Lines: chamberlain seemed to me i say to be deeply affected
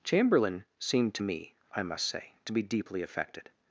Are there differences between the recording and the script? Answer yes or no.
yes